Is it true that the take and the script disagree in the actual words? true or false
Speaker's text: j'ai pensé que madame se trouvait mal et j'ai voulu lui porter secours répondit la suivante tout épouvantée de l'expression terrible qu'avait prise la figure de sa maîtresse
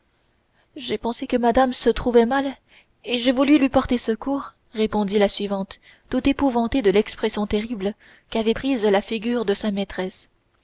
false